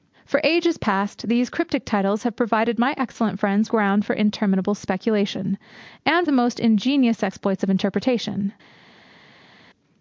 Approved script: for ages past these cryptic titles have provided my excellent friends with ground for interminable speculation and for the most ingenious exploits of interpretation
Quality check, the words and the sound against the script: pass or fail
fail